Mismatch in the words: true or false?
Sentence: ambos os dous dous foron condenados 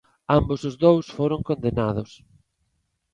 true